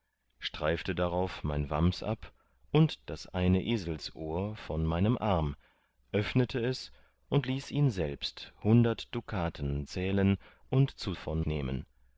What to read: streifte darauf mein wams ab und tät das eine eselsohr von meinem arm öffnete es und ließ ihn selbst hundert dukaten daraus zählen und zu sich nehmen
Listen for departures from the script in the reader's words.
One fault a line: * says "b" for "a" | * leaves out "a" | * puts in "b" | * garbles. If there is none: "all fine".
* leaves out "tät"
* leaves out "daraus"
* says "von" for "sich"